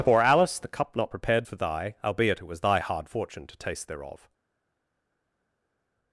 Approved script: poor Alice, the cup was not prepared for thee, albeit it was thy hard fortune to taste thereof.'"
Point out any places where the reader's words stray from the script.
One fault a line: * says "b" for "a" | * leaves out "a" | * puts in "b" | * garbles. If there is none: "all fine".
* leaves out "was"
* says "thy" for "thee"